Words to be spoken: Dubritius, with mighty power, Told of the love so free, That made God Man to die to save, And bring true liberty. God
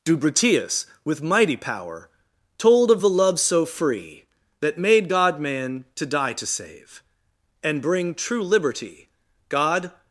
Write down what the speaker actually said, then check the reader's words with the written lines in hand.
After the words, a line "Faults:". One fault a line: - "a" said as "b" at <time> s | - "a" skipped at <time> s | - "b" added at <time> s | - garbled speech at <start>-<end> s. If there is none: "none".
Dubritius, with mighty power, Told of the love so free, That made God Man to die to save, And bring true liberty. God
Faults:
none